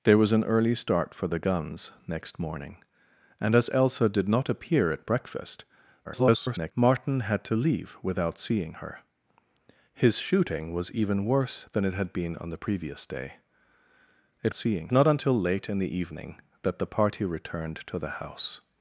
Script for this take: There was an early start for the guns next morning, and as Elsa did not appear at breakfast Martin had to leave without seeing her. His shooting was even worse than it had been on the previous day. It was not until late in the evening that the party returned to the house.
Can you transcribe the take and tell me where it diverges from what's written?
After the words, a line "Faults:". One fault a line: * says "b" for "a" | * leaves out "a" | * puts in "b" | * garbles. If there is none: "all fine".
There was an early start for the guns next morning, and as Elsa did not appear at breakfast [garbled] Martin had to leave without seeing her. His shooting was even worse than it had been on the previous day. It seeing not until late in the evening that the party returned to the house.
Faults:
* garbles
* says "seeing" for "was"